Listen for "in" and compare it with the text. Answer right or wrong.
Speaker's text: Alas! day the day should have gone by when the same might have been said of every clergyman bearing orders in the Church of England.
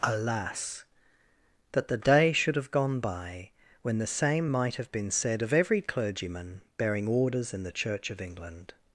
right